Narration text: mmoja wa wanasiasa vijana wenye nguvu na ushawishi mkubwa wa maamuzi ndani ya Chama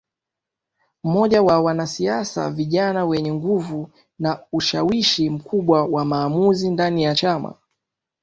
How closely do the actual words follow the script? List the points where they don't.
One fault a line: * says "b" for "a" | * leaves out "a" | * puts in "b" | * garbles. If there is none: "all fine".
all fine